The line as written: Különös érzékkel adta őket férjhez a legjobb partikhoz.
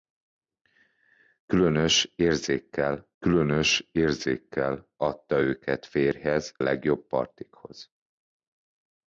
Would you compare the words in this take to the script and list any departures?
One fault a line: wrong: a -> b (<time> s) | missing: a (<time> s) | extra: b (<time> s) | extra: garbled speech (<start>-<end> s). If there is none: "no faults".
extra: különös érzékkel (3.2 s)
missing: a (6.5 s)